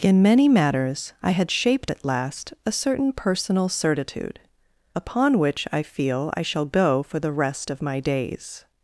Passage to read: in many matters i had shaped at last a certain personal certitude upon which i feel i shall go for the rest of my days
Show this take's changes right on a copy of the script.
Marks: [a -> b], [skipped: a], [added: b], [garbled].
in many matters i had shaped at last a certain personal certitude upon which i feel i shall go for the rest of my days